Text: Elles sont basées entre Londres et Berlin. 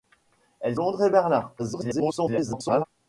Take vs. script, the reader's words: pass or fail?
fail